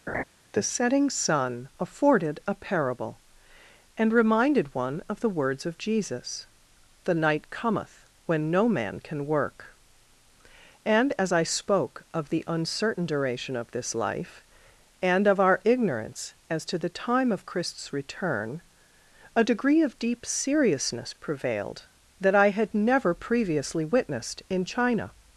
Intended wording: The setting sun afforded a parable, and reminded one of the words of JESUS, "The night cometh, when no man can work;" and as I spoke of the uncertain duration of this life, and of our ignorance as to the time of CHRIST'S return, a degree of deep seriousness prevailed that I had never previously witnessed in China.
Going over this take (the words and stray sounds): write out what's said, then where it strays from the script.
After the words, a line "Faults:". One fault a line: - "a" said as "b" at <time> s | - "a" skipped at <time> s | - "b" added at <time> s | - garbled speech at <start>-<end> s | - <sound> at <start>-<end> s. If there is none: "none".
The setting sun afforded a parable, and reminded one of the words of JESUS, "The night cometh, when no man can work;" and as I spoke of the uncertain duration of this life, and of our ignorance as to the time of CHRIST'S return, a degree of deep seriousness prevailed that I had never previously witnessed in China.
Faults:
- laugh at 0.1-0.2 s